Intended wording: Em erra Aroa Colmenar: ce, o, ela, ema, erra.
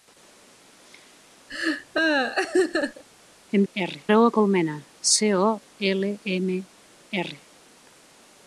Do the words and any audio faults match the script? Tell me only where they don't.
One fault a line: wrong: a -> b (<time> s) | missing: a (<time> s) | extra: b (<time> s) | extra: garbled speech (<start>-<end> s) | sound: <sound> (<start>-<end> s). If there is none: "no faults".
sound: laugh (1.5-3.0 s)